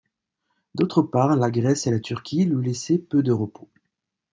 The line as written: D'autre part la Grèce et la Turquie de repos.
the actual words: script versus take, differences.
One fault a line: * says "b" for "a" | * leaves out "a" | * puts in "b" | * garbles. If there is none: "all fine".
* puts in "lui laissaient peu"